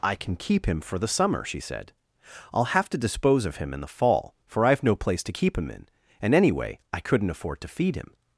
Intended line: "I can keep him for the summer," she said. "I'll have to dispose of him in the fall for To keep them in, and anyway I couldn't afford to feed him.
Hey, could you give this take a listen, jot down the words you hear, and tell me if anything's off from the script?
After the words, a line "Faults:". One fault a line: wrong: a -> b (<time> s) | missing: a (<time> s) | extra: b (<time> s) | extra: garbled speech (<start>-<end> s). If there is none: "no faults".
"I can keep him for the summer," she said. "I'll have to dispose of him in the fall for I've no place to keep him in, and anyway I couldn't afford to feed him.
Faults:
extra: I've no place (4.7 s)
wrong: them -> him (5.6 s)